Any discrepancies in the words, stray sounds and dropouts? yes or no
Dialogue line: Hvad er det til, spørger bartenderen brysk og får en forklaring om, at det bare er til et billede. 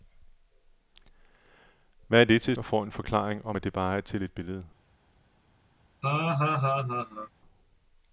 yes